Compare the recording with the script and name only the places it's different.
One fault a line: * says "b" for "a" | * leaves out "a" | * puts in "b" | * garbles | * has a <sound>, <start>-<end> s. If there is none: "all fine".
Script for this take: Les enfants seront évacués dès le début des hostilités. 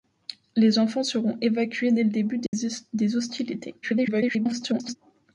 * has a dropout, 2.5-2.5 s
* garbles